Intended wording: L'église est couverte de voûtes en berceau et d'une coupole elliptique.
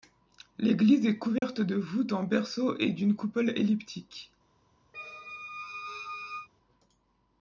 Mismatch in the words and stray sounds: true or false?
true